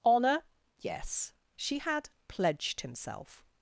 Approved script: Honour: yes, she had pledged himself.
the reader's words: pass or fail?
pass